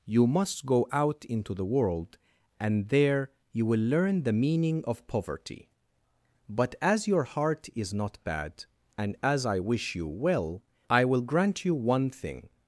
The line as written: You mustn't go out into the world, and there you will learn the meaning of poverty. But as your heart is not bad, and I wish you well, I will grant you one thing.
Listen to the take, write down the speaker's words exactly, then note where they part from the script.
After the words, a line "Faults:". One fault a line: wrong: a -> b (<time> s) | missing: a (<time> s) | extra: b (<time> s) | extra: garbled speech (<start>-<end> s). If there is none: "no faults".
You must go out into the world, and there you will learn the meaning of poverty. But as your heart is not bad, and as I wish you well, I will grant you one thing.
Faults:
wrong: mustn't -> must (0.3 s)
extra: as (9.2 s)